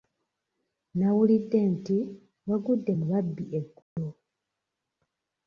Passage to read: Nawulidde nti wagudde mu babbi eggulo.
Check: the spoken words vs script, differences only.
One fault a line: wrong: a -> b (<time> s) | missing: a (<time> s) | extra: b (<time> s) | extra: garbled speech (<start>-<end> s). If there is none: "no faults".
no faults